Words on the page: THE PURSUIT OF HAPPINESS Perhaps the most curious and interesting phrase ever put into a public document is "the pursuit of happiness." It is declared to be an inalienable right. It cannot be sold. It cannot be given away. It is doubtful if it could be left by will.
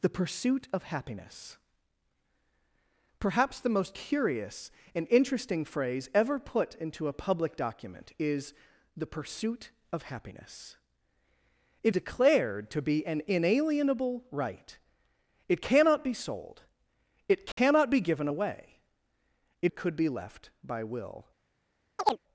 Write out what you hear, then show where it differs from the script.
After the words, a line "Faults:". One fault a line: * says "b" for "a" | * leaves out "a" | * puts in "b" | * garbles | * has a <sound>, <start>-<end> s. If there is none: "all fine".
THE PURSUIT OF HAPPINESS Perhaps the most curious and interesting phrase ever put into a public document is "the pursuit of happiness." It declared to be an inalienable right. It cannot be sold. It cannot be given away. It it could be left by will.
Faults:
* leaves out "is"
* has a dropout, 17.5-17.6 s
* leaves out "is doubtful if"
* has a chirp, 22.0-22.2 s